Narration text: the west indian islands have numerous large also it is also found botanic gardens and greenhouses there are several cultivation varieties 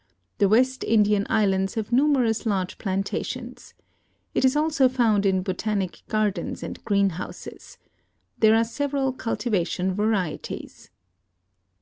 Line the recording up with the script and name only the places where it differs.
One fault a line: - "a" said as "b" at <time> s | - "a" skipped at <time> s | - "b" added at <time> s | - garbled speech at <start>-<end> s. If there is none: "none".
- "also" said as "plantations" at 2.8 s
- "in" added at 5.2 s